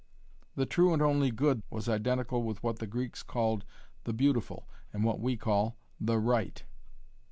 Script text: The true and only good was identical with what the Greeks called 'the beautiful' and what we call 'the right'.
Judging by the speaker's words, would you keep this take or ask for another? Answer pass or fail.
pass